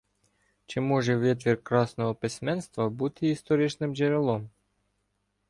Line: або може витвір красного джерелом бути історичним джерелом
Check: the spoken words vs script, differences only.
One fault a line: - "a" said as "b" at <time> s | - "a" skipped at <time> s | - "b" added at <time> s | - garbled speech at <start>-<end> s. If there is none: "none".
- "або" said as "чи" at 0.7 s
- "джерелом" said as "письменства" at 2.1 s